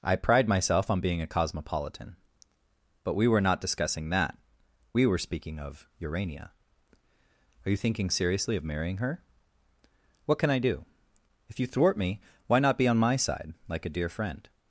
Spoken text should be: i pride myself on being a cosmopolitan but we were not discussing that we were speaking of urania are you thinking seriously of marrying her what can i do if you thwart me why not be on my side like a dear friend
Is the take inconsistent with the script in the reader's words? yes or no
no